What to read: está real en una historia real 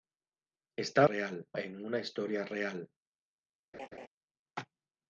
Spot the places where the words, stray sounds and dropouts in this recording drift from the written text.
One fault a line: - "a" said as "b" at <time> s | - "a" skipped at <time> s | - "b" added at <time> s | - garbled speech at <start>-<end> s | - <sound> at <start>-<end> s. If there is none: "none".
- laugh at 3.7-4.1 s